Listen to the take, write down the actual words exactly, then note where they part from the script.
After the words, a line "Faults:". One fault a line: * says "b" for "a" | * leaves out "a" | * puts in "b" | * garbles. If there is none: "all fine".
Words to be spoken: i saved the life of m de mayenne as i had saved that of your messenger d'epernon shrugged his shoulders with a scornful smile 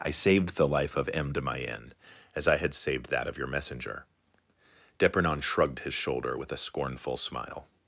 i saved the life of m de mayenne as i had saved that of your messenger d'epernon shrugged his shoulder with a scornful smile
Faults:
* says "shoulder" for "shoulders"